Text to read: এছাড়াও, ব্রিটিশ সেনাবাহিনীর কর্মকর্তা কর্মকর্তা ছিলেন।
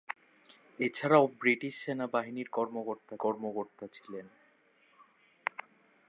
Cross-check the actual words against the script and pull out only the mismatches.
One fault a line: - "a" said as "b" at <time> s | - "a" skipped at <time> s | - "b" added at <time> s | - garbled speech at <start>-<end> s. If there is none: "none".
none